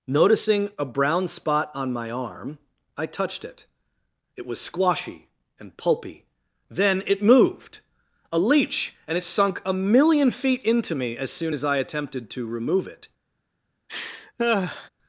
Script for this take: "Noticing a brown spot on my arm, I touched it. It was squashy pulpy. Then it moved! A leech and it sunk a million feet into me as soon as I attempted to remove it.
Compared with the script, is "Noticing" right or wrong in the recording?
right